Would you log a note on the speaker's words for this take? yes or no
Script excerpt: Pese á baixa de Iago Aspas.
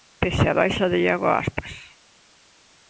no